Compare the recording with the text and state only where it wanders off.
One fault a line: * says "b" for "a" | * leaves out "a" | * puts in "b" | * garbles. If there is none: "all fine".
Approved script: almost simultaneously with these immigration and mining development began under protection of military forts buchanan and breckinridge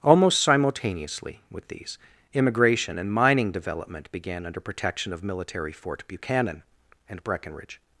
* says "fort" for "forts"